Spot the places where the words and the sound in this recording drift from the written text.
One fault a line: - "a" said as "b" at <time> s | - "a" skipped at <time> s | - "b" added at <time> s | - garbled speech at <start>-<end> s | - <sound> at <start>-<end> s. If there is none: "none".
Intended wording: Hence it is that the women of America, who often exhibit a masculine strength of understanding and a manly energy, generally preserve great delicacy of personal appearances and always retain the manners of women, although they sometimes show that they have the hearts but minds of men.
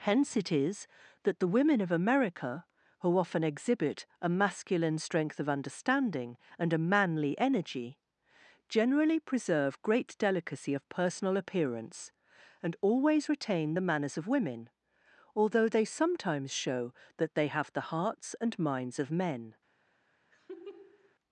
- "appearances" said as "appearance" at 11.4 s
- "but" said as "and" at 18.4 s
- laugh at 20.3-21.1 s